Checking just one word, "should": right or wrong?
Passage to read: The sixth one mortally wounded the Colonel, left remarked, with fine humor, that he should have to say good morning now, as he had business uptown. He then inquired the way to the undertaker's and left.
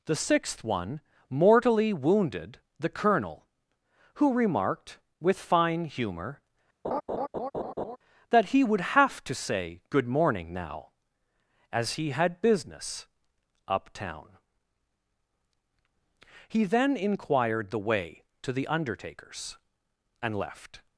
wrong